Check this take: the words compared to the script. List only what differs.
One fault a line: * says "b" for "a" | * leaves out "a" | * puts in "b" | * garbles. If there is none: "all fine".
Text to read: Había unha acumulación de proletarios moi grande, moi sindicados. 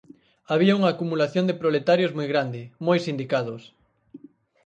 all fine